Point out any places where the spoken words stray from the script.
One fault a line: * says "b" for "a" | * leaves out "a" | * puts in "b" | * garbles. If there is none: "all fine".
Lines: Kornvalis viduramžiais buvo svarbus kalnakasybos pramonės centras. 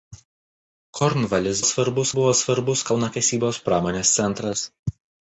* says "svarbus" for "viduramžiais"